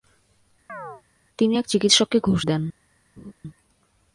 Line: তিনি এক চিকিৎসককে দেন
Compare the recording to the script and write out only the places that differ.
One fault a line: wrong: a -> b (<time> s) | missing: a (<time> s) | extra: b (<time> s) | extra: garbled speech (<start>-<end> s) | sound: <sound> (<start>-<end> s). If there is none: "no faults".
sound: chirp (0.7-1.0 s)
extra: ঘুষ (2.2 s)
sound: laugh (3.2-3.3 s)